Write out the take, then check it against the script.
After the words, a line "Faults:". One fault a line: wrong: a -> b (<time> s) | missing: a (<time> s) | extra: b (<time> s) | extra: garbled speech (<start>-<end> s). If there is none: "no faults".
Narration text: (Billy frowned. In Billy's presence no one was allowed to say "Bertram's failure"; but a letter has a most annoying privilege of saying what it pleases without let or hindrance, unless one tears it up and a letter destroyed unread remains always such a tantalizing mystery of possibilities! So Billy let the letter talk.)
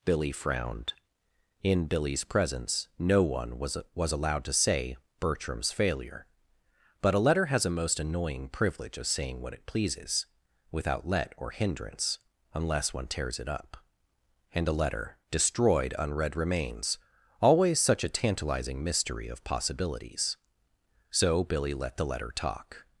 (Billy frowned. In Billy's presence no one was was allowed to say "Bertram's failure"; but a letter has a most annoying privilege of saying what it pleases without let or hindrance, unless one tears it up and a letter destroyed unread remains always such a tantalizing mystery of possibilities! So Billy let the letter talk.)
Faults:
extra: was (3.9 s)